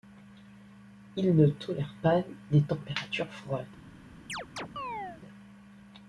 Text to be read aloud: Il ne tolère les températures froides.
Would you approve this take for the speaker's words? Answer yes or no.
no